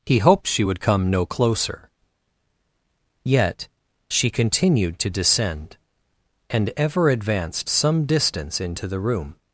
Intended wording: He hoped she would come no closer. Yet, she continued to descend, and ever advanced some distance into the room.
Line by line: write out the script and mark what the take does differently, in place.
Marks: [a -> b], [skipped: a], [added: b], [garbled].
He hoped she would come no closer. Yet, she continued to descend, and ever advanced some distance into the room.